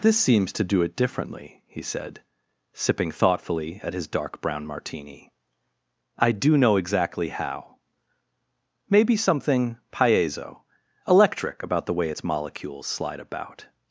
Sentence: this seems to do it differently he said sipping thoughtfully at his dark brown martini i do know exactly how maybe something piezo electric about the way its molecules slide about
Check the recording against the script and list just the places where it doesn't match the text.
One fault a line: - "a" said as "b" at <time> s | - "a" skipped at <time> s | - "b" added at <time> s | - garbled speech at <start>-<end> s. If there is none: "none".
none